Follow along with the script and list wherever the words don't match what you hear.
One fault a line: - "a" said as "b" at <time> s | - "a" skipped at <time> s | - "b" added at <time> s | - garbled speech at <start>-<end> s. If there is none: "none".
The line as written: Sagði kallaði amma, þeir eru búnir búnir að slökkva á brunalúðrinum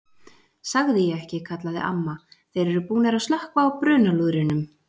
- "ég ekki" added at 1.1 s
- "búnir" skipped at 3.2 s